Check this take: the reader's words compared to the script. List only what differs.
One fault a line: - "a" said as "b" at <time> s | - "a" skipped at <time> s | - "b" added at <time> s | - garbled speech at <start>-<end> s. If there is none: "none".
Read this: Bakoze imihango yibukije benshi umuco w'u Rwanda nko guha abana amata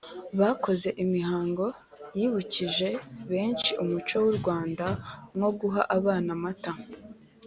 none